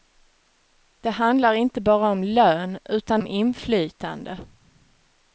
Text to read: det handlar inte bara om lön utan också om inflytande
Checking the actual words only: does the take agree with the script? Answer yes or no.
no